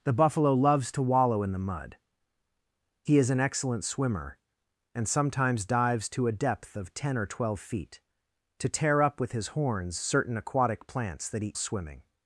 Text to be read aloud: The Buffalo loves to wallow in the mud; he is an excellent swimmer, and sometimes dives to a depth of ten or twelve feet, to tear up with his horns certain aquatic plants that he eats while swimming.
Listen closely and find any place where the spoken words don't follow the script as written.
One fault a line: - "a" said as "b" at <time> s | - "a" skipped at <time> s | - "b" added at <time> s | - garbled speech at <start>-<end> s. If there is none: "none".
- "eats while" skipped at 11.5 s